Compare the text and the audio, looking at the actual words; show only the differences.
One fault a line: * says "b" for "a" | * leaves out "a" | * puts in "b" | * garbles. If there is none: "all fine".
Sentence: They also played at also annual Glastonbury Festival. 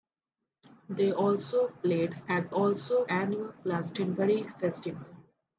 all fine